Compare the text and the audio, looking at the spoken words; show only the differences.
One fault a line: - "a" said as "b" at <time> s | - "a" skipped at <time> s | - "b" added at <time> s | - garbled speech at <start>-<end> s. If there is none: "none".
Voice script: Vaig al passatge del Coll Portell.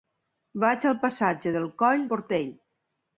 none